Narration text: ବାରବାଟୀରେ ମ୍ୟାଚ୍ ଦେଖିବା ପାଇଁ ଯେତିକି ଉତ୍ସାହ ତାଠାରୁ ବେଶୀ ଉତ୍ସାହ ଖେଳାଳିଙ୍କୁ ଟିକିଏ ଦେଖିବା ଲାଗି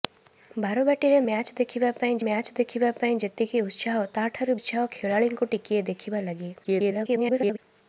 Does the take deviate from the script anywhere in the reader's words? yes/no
yes